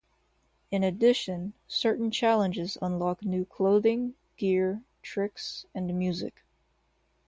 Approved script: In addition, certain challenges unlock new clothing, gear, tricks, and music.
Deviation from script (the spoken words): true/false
false